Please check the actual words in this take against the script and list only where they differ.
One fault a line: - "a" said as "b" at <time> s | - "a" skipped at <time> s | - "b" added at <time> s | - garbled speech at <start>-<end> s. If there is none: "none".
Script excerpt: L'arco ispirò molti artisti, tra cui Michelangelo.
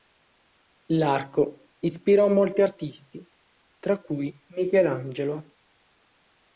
none